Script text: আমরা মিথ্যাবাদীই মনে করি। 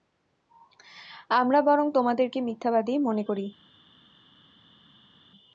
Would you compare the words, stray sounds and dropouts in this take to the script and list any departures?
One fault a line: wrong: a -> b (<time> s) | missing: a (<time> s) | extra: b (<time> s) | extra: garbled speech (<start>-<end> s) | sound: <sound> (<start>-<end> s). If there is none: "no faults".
extra: বরং তোমাদেরকে (1.6 s)